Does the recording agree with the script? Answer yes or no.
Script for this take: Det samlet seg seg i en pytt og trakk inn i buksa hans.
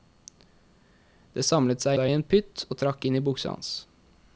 yes